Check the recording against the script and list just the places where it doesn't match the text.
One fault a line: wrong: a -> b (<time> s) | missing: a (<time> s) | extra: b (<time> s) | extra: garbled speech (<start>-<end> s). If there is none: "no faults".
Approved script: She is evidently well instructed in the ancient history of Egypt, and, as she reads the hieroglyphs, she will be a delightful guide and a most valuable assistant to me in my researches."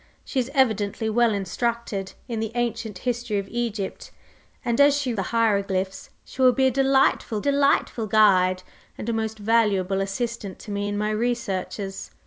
missing: reads (5.1 s)
extra: delightful (7.4 s)